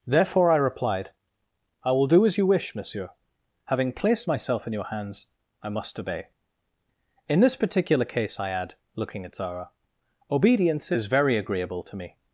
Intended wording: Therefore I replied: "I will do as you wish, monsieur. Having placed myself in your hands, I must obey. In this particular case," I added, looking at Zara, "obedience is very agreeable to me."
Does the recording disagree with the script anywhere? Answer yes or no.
yes